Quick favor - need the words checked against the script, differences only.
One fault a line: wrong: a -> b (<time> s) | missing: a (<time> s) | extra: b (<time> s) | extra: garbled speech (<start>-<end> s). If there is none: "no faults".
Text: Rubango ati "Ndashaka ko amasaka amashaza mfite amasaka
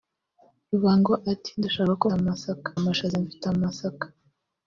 no faults